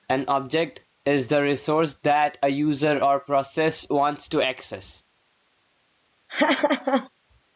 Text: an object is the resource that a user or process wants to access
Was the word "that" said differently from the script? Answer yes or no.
no